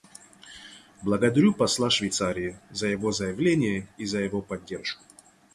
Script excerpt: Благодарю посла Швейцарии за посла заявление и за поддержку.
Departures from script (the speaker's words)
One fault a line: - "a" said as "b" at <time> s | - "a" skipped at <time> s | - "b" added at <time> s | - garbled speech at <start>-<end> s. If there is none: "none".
- "посла" said as "его" at 2.9 s
- "его" added at 4.2 s